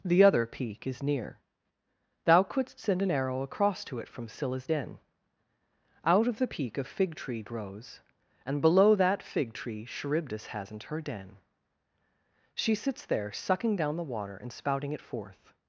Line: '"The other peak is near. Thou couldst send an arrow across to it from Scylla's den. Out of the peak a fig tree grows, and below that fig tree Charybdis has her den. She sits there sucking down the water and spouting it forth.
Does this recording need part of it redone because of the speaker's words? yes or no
yes